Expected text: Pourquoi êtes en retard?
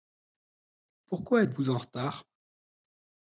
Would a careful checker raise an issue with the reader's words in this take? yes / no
yes